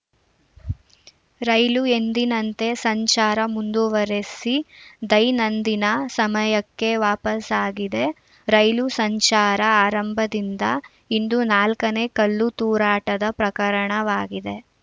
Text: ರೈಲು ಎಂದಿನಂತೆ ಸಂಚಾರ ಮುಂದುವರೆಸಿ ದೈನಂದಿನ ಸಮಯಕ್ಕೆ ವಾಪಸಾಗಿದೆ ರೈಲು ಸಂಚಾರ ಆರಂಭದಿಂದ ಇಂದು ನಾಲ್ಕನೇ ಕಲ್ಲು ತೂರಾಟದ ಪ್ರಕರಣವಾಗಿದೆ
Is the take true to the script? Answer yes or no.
yes